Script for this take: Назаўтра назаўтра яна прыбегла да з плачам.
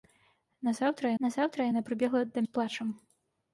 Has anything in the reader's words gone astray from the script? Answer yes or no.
no